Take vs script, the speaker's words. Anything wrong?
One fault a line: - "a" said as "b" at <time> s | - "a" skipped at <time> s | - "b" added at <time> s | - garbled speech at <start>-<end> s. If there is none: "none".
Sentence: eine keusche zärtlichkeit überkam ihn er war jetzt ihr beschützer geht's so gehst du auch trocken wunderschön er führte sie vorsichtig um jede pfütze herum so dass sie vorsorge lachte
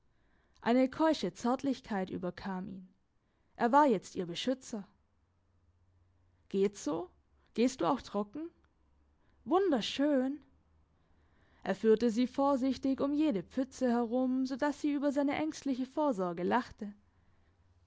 - "über seine ängstliche" added at 14.9 s